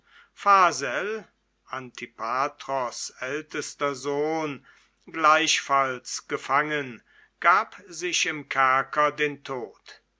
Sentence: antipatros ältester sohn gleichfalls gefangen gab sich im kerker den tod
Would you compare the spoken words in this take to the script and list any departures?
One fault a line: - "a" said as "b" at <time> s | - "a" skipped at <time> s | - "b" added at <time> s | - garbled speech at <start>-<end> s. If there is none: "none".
none